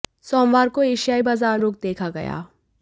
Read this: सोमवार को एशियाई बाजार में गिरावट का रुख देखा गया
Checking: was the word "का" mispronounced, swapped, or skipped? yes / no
yes